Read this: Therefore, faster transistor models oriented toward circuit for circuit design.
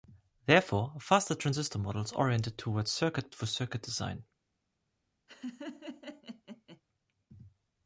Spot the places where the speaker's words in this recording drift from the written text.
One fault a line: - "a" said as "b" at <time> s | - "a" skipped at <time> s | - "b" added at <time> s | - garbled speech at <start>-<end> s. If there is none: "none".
none